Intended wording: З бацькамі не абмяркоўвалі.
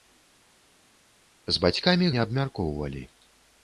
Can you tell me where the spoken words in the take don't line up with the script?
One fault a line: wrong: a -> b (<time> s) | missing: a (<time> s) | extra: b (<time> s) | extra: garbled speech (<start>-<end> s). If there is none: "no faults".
no faults